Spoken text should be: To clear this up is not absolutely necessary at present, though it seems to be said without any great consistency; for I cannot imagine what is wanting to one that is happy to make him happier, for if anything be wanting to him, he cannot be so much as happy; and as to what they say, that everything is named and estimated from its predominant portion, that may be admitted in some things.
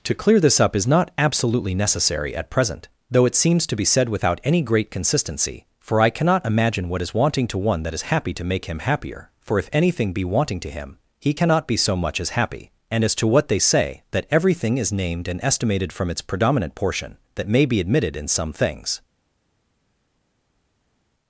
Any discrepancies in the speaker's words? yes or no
no